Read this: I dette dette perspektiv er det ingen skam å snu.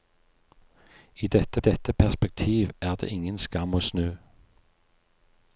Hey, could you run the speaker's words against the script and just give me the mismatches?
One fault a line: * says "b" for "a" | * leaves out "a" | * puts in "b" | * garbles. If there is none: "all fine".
all fine